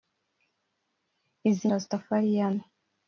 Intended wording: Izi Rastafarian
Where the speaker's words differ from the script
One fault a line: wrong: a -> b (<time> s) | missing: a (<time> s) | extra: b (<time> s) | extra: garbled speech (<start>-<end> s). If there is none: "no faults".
no faults